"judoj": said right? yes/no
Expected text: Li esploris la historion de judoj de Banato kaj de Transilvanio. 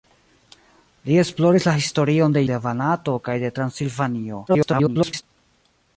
no